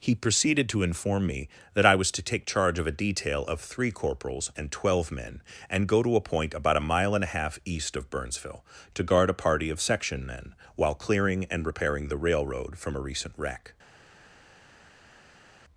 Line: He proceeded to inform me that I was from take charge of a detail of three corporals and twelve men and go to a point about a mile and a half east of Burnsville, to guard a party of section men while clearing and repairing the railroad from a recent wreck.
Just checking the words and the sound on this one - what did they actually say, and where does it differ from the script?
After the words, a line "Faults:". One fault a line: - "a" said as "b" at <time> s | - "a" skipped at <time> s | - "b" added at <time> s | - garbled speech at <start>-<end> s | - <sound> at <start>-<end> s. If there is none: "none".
He proceeded to inform me that I was to take charge of a detail of three corporals and twelve men and go to a point about a mile and a half east of Burnsville, to guard a party of section men while clearing and repairing the railroad from a recent wreck.
Faults:
- "from" said as "to" at 2.1 s